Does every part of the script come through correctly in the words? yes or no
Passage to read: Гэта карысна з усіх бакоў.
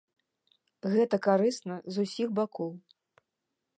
yes